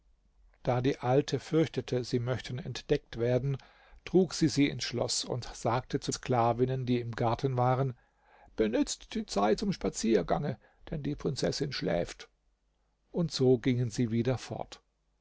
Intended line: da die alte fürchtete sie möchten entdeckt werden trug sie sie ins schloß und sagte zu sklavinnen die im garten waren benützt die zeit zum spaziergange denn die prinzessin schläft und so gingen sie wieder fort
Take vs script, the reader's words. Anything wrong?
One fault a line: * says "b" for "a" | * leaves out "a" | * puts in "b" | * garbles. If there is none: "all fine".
all fine